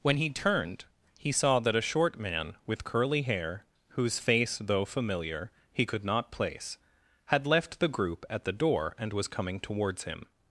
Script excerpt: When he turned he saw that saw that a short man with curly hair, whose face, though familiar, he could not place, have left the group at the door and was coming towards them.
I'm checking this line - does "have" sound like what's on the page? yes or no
no